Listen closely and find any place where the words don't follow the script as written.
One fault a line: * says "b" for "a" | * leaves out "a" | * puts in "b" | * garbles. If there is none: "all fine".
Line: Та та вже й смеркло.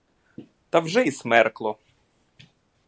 * leaves out "та"